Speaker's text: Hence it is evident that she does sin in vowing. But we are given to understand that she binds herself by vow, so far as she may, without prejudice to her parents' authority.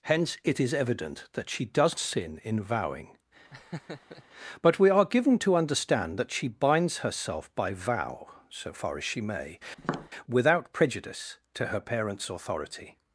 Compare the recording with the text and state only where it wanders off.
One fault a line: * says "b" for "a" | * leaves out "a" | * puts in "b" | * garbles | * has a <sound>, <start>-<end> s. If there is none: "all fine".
* has a laugh, 3.5-4.2 s
* has a tap, 9.8-10.1 s